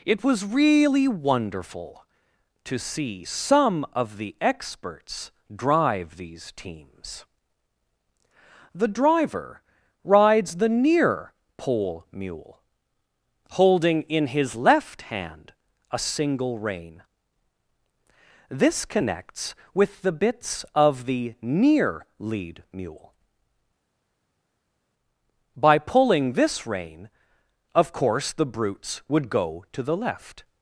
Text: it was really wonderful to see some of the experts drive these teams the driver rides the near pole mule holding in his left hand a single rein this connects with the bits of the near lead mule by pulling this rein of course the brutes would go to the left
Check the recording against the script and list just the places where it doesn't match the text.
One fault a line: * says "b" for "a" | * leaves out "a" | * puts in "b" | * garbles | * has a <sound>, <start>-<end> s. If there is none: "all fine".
all fine